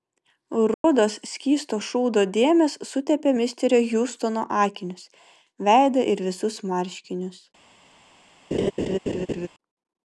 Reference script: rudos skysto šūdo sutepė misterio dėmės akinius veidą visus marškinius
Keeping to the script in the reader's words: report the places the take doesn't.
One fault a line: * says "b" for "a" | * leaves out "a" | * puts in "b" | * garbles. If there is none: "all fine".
* puts in "dėmės"
* says "hjustono" for "dėmės"
* puts in "ir"